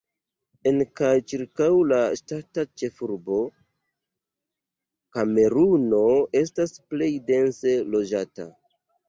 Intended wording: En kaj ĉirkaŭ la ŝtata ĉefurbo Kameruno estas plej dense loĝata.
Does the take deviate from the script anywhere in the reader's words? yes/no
no